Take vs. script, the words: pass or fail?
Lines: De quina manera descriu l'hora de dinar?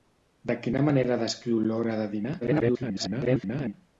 fail